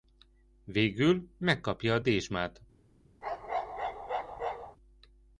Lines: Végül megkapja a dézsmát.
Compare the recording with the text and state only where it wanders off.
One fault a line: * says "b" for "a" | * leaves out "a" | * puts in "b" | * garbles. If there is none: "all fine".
all fine